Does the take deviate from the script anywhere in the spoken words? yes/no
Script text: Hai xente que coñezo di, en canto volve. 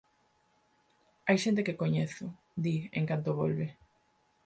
no